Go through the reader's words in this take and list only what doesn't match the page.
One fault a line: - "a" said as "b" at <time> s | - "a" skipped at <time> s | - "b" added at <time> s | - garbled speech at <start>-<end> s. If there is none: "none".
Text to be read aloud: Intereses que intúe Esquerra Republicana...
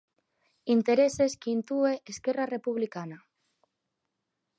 none